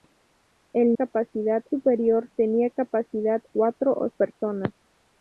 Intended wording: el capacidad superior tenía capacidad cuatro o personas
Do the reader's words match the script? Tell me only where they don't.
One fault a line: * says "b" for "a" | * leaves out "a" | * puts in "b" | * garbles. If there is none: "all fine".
all fine